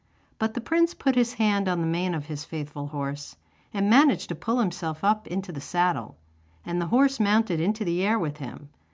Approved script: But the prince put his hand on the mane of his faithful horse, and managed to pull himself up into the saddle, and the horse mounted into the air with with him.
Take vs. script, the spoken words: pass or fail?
fail